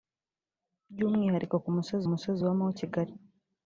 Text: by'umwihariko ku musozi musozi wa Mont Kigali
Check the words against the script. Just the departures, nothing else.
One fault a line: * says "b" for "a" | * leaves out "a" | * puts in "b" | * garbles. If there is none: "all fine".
all fine